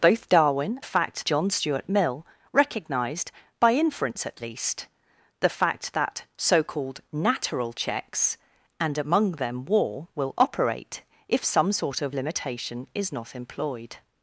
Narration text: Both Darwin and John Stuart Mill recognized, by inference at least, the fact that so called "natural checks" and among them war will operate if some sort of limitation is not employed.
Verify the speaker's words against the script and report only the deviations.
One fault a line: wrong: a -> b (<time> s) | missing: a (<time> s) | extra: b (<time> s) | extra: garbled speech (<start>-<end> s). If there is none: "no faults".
wrong: and -> fact (0.8 s)